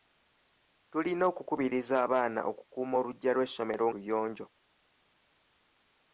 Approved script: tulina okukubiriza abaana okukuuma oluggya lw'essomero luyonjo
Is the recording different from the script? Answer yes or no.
no